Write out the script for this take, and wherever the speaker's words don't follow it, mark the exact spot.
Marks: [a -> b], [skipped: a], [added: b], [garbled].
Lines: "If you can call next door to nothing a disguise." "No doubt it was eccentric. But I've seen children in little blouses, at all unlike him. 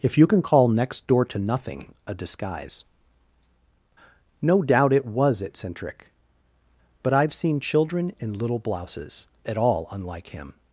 "If you can call next door to nothing a disguise." "No doubt it was eccentric. But I've seen children in little blouses, at all unlike him.